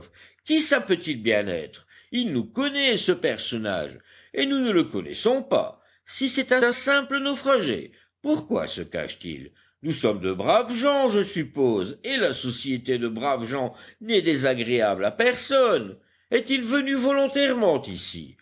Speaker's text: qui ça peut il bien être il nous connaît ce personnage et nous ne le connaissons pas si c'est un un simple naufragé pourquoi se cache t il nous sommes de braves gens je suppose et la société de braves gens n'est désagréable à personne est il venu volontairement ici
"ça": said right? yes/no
yes